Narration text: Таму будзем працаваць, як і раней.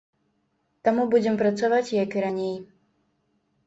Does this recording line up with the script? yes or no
yes